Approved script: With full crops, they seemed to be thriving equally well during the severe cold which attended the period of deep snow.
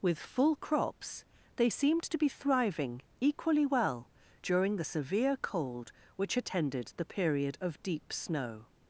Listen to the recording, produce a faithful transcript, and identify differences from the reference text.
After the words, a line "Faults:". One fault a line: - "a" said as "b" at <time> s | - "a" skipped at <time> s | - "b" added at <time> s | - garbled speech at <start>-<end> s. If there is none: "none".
With full crops, they seemed to be thriving equally well during the severe cold which attended the period of deep snow.
Faults:
none